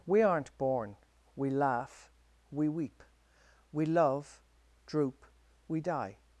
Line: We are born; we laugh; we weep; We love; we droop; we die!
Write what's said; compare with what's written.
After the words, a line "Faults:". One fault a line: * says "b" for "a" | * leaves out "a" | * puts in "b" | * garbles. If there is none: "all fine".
We aren't born; we laugh; we weep; We love; droop; we die!
Faults:
* says "aren't" for "are"
* leaves out "we"